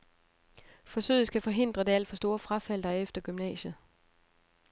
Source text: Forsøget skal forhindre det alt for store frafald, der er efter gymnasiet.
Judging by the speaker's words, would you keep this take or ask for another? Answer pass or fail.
pass